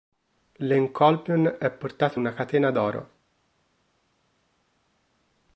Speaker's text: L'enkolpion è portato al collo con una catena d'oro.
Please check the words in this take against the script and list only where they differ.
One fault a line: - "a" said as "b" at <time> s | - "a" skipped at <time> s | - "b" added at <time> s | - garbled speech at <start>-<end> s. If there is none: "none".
- "al collo con" skipped at 2.2 s